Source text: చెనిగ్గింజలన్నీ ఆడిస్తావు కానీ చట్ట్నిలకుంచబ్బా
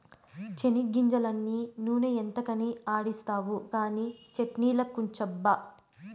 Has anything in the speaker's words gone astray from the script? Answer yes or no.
yes